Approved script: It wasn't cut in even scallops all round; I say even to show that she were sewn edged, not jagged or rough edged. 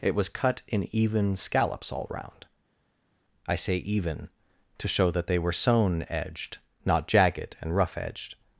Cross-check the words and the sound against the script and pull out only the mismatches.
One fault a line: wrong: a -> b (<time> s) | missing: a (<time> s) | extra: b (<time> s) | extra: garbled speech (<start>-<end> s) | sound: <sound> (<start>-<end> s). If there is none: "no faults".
wrong: wasn't -> was (0.1 s)
wrong: she -> they (5.3 s)
wrong: or -> and (7.6 s)